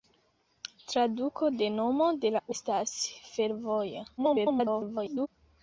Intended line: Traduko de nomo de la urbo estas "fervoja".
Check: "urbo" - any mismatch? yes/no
yes